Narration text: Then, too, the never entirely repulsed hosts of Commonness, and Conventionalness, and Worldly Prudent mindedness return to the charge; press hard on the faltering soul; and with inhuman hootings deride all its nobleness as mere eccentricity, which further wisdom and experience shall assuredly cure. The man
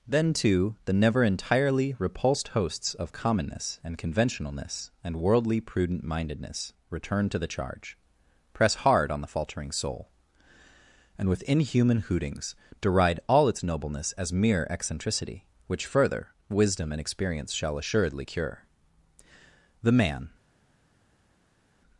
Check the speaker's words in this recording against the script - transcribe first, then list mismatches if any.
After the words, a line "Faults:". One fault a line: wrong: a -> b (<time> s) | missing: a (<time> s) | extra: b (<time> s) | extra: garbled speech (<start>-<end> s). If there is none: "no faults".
Then, too, the never entirely repulsed hosts of Commonness, and Conventionalness, and Worldly Prudent mindedness return to the charge; press hard on the faltering soul; and with inhuman hootings deride all its nobleness as mere eccentricity, which further wisdom and experience shall assuredly cure. The man
Faults:
no faults